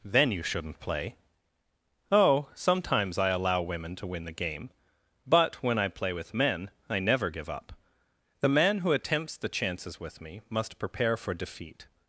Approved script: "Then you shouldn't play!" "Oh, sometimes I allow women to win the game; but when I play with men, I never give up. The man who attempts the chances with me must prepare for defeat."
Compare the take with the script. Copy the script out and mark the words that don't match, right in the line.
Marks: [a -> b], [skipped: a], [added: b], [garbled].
"Then you shouldn't play!" "Oh, sometimes I allow women to win the game; but when I play with men, I never give up. The man who attempts the chances with me must prepare for defeat."